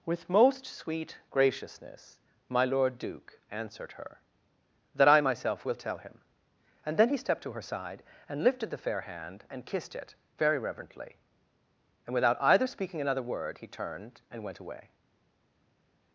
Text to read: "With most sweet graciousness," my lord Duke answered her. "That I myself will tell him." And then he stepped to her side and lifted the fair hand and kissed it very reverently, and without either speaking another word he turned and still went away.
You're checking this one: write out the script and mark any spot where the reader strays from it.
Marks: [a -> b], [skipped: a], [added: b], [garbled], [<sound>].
"With most sweet graciousness," my lord Duke answered her. "That I myself will tell him." And then he stepped to her side and lifted the fair hand and kissed it very reverently, and without either speaking another word he turned and [skipped: still] went away.